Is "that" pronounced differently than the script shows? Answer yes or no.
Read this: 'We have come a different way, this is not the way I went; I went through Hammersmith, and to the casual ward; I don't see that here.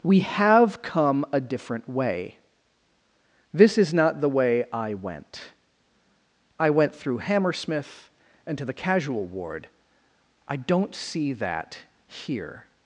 no